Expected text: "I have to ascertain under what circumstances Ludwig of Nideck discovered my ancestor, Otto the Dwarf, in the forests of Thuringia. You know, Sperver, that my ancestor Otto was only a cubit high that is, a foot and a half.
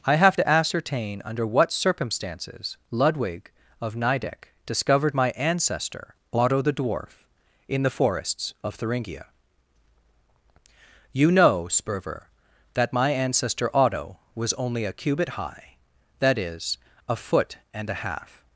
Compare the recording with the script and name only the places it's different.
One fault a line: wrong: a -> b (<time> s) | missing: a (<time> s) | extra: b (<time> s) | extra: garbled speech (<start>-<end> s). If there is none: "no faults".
no faults